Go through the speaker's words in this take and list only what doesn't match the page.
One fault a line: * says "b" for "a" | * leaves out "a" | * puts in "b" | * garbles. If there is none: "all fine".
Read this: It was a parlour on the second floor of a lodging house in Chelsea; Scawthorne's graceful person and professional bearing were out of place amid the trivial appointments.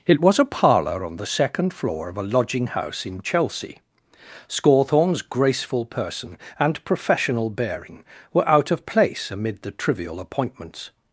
all fine